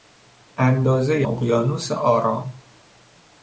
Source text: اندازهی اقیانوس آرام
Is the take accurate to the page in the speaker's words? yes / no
yes